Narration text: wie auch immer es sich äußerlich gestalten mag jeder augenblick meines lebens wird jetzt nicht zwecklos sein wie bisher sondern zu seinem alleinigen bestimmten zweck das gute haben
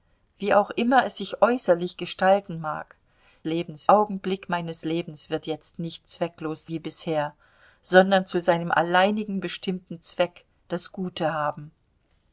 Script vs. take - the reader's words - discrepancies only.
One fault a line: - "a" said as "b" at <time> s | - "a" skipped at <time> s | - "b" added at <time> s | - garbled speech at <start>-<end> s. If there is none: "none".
- "jeder" said as "lebens" at 3.4 s
- "sein" skipped at 6.7 s